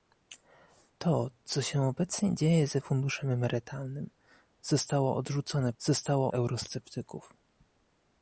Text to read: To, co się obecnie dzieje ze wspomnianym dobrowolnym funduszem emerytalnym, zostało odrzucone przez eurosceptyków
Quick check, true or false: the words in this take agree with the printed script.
false